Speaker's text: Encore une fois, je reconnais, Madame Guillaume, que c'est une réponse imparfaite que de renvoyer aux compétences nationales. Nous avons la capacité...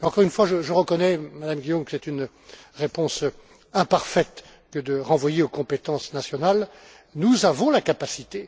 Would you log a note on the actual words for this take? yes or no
no